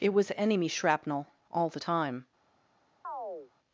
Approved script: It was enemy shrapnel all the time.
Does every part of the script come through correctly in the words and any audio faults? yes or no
no